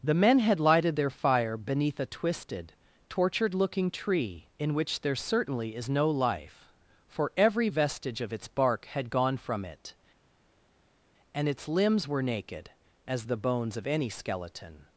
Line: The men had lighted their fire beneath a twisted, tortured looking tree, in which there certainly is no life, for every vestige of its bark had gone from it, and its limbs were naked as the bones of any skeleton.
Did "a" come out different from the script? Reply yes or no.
no